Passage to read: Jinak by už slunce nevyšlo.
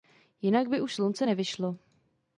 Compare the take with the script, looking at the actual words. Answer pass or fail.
pass